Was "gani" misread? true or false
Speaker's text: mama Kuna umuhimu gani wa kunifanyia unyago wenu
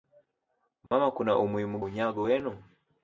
true